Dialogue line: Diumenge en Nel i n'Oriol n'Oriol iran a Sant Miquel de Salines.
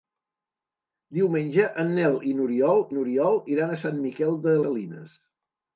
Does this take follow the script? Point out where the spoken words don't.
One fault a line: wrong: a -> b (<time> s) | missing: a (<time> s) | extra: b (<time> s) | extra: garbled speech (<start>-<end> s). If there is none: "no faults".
no faults